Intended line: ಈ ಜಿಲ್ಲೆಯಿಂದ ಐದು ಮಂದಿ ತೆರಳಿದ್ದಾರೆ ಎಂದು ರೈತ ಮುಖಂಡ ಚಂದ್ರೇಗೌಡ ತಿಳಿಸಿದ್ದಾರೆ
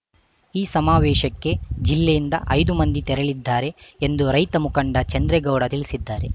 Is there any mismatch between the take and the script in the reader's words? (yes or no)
yes